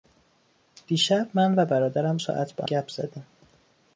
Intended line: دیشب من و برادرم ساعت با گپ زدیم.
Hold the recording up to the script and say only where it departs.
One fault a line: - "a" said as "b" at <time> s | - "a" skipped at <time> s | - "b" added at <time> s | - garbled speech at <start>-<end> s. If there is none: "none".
none